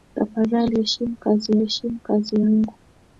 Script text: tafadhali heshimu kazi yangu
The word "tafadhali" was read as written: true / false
true